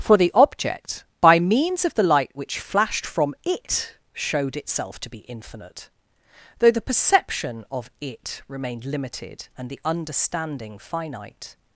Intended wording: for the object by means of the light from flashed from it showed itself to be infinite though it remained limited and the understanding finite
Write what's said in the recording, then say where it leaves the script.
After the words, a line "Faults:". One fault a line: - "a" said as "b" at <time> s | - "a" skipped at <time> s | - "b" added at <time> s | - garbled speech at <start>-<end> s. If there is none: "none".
for the object by means of the light which flashed from it showed itself to be infinite though the perception of it remained limited and the understanding finite
Faults:
- "from" said as "which" at 2.3 s
- "the perception of" added at 6.7 s